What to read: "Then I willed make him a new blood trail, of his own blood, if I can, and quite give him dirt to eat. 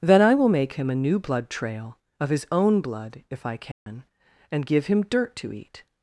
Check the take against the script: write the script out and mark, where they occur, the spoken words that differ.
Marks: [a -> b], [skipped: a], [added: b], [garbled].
"Then I [willed -> will] make him a new blood trail, of his own blood, if I can, and [skipped: quite] give him dirt to eat.